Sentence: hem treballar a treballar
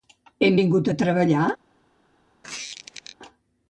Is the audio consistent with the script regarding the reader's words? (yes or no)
no